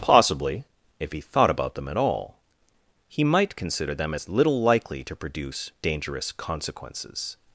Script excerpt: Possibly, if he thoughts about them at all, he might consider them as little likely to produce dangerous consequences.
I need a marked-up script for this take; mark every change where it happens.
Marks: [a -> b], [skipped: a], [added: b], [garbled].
Possibly, if he [thoughts -> thought] about them at all, he might consider them as little likely to produce dangerous consequences.